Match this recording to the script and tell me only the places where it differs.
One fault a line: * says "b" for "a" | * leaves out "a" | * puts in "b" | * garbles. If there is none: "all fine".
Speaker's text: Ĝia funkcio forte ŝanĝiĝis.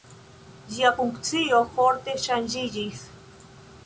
all fine